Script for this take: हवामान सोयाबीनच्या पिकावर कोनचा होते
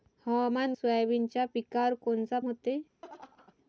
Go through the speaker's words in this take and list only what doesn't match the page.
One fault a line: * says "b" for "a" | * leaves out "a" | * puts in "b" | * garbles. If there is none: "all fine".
all fine